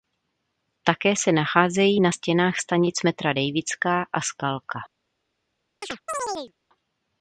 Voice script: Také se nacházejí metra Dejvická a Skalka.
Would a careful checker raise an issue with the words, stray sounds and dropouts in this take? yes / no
yes